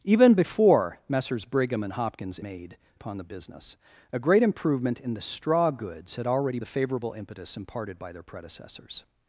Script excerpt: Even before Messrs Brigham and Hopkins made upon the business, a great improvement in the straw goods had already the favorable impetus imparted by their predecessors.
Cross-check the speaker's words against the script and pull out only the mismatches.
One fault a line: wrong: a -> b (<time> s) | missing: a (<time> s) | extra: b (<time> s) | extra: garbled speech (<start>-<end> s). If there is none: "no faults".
no faults